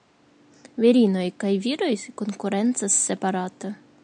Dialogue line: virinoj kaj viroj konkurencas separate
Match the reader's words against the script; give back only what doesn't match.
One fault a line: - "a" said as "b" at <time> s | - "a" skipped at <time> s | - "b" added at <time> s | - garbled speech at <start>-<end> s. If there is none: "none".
none